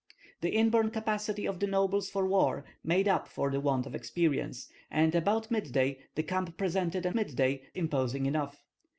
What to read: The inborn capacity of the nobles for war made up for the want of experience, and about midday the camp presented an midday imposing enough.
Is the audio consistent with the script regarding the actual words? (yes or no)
yes